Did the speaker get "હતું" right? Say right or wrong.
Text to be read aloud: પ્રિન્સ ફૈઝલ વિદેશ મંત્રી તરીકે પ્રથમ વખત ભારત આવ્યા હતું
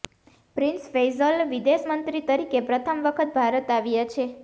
wrong